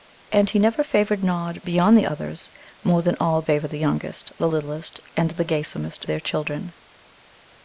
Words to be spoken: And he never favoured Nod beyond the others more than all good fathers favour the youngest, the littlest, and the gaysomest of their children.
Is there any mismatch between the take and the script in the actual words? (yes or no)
yes